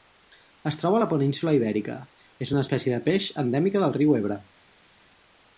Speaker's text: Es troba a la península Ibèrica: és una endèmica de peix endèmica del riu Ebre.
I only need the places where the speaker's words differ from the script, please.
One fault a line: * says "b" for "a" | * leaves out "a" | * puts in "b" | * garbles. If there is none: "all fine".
* says "espècie" for "endèmica"